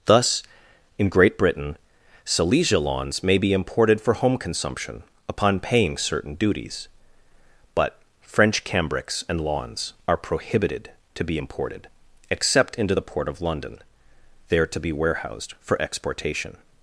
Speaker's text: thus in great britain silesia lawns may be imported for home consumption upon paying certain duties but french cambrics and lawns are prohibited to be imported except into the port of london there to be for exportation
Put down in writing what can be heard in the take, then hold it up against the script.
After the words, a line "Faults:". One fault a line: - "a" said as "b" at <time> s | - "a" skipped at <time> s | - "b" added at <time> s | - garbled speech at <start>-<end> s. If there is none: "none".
thus in great britain silesia lawns may be imported for home consumption upon paying certain duties but french cambrics and lawns are prohibited to be imported except into the port of london there to be warehoused for exportation
Faults:
- "warehoused" added at 14.9 s